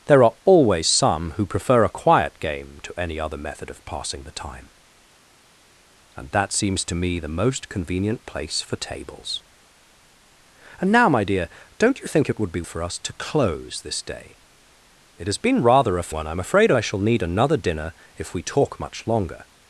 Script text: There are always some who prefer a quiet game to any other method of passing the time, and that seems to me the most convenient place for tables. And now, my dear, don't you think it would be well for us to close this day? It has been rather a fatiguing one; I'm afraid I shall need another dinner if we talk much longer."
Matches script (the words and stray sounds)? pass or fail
fail